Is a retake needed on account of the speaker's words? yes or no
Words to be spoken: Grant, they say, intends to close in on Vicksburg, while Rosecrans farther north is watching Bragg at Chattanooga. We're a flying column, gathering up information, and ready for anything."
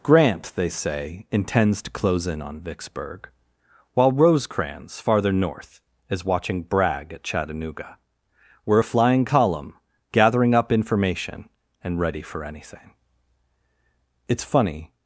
yes